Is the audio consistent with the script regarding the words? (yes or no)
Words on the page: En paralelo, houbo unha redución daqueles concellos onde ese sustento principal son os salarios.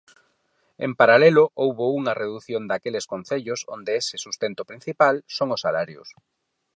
yes